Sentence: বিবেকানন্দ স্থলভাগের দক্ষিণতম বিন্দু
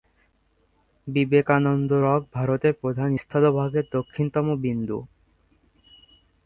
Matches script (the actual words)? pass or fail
fail